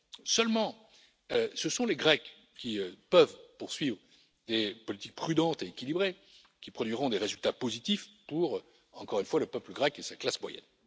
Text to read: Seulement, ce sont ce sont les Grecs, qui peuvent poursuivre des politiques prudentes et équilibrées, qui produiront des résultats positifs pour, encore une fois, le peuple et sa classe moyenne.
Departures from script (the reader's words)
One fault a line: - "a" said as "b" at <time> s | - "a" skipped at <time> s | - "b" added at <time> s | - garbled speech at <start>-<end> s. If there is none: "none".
- "ce sont" skipped at 1.9 s
- "grec" added at 9.7 s